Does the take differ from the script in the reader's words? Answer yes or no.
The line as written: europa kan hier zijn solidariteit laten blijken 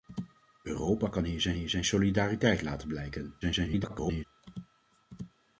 yes